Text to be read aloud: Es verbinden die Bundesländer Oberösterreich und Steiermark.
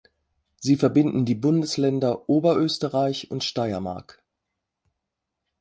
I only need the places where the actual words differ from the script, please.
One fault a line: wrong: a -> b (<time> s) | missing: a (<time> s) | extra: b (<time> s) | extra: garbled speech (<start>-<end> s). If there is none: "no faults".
wrong: Es -> Sie (0.6 s)